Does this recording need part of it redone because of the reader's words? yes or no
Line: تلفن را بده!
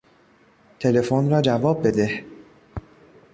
yes